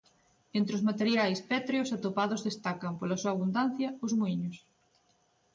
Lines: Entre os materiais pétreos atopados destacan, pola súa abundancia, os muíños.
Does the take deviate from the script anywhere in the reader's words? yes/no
no